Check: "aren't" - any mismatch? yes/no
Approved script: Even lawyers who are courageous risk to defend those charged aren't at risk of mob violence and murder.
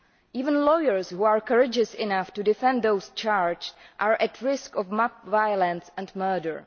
yes